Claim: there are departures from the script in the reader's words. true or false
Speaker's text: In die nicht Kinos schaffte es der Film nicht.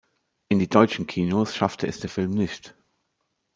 true